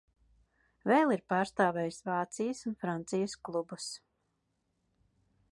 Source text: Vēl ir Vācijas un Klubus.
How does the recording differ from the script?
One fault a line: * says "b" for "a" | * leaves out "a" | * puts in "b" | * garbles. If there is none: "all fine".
* puts in "pārstāvējis"
* puts in "Francijas"